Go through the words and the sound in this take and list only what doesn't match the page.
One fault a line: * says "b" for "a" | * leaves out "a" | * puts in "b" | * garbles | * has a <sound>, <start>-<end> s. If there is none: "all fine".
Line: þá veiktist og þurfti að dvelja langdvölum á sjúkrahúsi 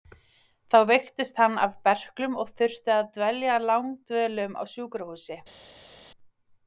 * puts in "hann af berklum"